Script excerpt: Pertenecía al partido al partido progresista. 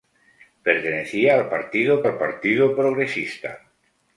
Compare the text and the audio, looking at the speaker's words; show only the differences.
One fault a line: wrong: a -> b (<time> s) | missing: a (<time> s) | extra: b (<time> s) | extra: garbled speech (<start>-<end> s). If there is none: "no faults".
no faults